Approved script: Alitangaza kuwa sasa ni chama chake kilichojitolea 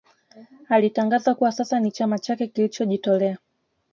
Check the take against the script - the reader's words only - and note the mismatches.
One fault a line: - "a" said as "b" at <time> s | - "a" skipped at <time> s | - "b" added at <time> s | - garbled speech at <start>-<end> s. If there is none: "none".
none